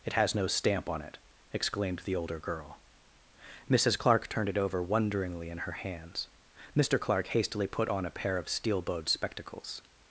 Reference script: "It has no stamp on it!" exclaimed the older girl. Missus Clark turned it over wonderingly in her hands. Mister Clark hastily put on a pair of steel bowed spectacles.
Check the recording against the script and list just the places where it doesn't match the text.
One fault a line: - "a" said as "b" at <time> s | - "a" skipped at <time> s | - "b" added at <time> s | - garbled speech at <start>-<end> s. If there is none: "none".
none